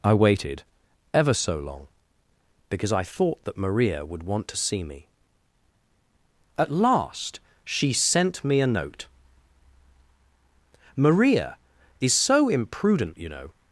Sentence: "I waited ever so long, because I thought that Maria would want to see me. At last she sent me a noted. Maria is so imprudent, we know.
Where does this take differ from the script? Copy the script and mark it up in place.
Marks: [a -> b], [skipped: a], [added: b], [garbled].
"I waited ever so long, because I thought that Maria would want to see me. At last she sent me a [noted. -> note] Maria is so imprudent, [we -> you] know.